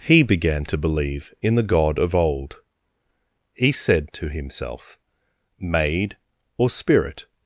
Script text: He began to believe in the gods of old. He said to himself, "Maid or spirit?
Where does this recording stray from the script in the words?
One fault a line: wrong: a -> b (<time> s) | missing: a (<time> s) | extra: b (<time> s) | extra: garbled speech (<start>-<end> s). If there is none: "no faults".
wrong: gods -> god (1.6 s)